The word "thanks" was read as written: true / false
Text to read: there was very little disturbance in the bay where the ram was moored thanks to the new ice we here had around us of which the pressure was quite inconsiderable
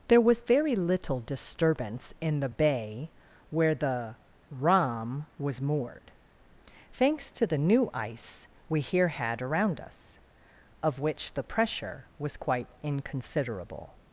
true